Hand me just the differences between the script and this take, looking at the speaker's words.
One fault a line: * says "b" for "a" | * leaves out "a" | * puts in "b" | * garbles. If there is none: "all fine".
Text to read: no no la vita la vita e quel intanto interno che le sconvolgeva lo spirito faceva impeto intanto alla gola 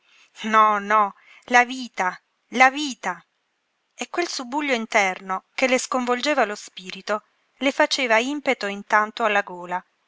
* says "subbuglio" for "intanto"
* puts in "le"